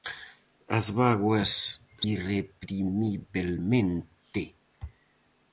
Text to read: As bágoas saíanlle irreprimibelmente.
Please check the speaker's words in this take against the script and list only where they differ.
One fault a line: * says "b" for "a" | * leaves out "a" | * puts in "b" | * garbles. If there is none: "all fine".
* leaves out "saíanlle"